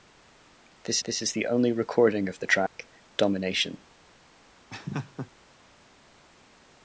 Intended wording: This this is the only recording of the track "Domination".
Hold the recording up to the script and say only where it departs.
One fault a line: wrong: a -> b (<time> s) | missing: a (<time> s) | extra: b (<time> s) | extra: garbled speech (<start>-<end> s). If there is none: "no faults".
no faults